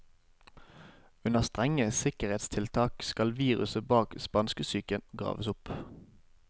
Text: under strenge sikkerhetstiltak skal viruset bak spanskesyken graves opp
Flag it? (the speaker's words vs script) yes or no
no